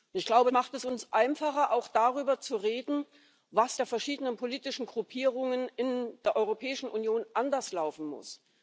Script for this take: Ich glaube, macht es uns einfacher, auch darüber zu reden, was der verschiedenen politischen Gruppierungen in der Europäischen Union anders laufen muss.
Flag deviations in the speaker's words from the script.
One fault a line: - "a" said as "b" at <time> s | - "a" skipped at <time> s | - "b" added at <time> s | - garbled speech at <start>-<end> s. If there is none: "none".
none